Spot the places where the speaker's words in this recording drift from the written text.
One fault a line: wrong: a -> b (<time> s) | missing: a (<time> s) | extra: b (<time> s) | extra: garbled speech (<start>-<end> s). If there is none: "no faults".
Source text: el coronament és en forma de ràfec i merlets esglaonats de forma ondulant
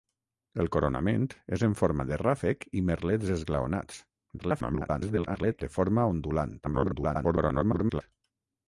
extra: garbled speech (4.4-5.6 s)
extra: garbled speech (6.6-8.0 s)